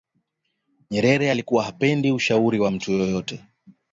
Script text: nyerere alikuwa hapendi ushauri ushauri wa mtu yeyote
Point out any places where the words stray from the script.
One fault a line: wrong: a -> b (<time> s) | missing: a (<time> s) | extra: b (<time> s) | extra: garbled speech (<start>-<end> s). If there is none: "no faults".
missing: ushauri (2.6 s)